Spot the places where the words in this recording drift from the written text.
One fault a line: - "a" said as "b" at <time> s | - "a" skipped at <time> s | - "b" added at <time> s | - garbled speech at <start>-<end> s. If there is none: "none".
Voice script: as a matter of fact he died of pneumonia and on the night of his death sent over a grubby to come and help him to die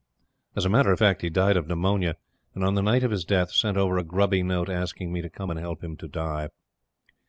- "note asking me" added at 4.4 s